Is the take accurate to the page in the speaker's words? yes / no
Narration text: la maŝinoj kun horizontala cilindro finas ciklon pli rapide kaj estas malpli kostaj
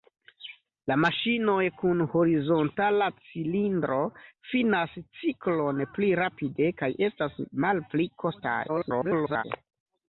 no